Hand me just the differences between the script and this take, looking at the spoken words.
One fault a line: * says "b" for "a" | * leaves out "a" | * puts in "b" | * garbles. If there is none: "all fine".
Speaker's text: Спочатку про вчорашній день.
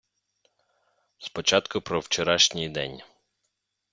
all fine